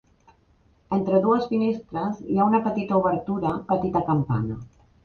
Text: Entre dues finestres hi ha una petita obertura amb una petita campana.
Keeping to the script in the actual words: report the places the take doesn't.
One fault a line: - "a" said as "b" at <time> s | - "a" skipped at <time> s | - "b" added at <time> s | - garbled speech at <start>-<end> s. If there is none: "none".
- "amb una" skipped at 3.5 s